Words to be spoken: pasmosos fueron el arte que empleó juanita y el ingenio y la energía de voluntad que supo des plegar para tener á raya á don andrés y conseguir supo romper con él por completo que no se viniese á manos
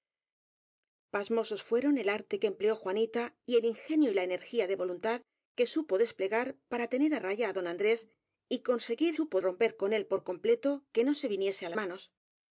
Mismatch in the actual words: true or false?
false